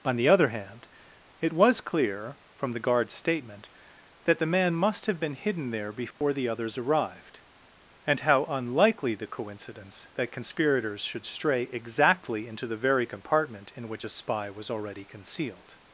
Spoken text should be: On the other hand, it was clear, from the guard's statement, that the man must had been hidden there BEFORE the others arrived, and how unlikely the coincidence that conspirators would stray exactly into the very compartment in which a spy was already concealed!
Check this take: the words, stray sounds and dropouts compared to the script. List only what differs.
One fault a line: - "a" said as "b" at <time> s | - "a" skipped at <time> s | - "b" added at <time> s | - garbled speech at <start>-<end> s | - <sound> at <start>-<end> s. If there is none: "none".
- "had" said as "have" at 5.0 s
- dropout at 6.1-6.2 s
- "would" said as "should" at 11.0 s